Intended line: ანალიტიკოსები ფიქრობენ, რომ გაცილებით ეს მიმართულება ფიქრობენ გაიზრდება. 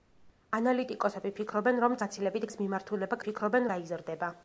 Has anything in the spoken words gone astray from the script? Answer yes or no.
no